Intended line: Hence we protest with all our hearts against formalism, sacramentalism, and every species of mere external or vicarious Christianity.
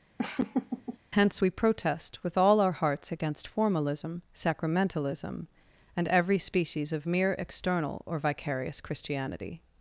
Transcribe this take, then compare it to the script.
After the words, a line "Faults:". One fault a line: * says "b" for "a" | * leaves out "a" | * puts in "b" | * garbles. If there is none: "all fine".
Hence we protest with all our hearts against formalism, sacramentalism, and every species of mere external or vicarious Christianity.
Faults:
all fine